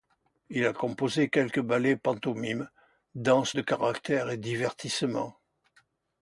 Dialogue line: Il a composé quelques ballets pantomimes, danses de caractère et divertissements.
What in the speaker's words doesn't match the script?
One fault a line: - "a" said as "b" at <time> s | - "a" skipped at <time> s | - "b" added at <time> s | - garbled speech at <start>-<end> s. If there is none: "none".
none